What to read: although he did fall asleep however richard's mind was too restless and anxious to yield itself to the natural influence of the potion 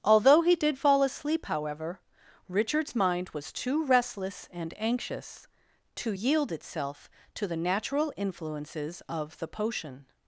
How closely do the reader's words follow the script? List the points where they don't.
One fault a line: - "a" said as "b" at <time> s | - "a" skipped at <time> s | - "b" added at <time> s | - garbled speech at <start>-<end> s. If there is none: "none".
- "influence" said as "influences" at 8.2 s